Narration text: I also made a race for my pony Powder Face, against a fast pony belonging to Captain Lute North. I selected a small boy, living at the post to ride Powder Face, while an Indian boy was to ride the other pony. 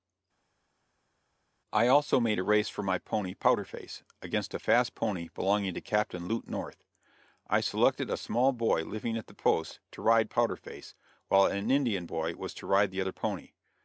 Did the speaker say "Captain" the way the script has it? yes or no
yes